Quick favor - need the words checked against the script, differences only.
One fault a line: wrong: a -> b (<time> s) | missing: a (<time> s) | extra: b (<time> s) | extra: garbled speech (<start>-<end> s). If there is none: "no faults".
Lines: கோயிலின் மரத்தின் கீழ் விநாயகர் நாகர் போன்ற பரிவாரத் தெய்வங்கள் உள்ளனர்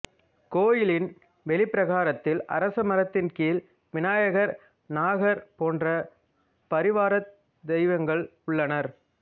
extra: வெளிப்பிரகாரத்தில் அரச (1.4 s)